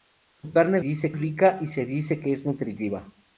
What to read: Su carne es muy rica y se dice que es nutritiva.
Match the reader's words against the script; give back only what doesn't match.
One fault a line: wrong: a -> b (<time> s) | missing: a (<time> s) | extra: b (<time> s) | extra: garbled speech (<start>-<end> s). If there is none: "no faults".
wrong: muy -> dice (0.8 s)